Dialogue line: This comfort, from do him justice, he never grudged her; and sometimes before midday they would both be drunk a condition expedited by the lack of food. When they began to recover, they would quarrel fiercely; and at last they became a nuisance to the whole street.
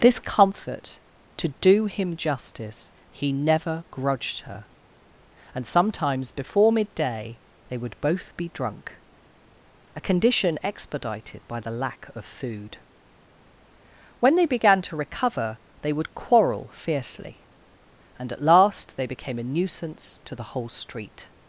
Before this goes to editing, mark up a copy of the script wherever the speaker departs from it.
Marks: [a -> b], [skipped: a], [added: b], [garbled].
This comfort, [from -> to] do him justice, he never grudged her; and sometimes before midday they would both be drunk a condition expedited by the lack of food. When they began to recover, they would quarrel fiercely; and at last they became a nuisance to the whole street.